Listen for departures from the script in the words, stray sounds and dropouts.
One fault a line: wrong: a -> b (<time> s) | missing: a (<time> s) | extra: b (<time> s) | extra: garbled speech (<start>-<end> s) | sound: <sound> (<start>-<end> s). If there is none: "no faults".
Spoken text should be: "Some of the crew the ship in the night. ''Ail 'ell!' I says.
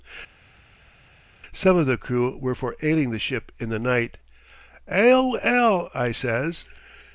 extra: were for ailing (2.4 s)